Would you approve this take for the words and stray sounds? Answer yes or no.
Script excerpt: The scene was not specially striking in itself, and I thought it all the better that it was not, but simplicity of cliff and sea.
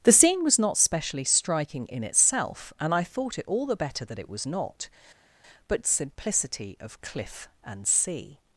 yes